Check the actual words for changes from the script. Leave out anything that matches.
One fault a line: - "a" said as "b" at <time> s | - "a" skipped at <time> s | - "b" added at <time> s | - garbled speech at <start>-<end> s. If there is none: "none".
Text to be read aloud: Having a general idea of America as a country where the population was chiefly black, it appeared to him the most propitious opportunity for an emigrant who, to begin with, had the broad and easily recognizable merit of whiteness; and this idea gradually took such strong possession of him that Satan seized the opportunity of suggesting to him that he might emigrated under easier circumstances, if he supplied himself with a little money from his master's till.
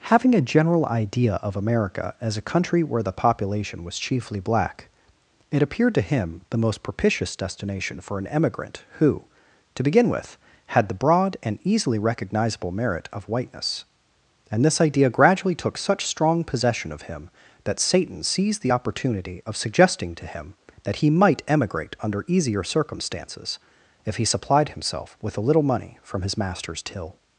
- "opportunity" said as "destination" at 7.3 s
- "emigrated" said as "emigrate" at 21.5 s